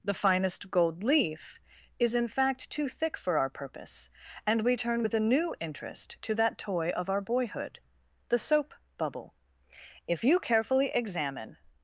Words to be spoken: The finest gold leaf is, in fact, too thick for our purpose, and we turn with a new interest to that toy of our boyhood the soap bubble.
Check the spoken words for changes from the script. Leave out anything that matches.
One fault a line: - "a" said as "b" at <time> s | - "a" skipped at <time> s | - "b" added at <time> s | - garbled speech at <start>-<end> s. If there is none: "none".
- "If you carefully examine" added at 10.0 s